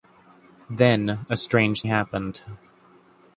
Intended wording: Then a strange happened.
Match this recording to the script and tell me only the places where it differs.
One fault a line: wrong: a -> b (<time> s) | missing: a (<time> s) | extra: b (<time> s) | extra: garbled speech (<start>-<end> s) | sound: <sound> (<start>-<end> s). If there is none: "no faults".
no faults